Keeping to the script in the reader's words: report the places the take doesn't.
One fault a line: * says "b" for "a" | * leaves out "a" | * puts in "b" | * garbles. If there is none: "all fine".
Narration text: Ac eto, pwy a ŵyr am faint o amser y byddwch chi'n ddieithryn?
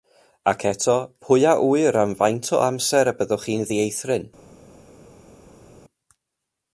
all fine